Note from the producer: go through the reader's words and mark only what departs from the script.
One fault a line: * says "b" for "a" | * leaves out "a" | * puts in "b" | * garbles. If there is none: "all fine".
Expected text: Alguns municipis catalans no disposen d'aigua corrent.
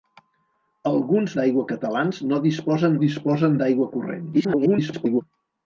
* says "d'aigua" for "municipis"
* puts in "disposen"
* garbles